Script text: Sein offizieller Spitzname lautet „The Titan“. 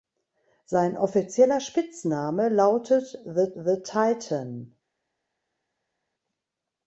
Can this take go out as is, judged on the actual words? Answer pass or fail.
fail